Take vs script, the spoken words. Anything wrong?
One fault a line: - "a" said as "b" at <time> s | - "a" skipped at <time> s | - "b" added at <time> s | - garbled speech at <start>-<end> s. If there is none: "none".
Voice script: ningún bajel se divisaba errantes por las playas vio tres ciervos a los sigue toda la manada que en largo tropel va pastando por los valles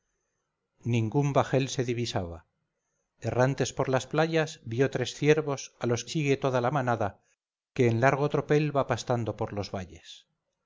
none